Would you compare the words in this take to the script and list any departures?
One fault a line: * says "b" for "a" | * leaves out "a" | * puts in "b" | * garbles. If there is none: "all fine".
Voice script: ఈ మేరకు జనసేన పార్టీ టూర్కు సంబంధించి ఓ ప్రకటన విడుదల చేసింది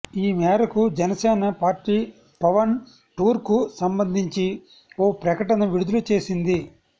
* puts in "పవన్"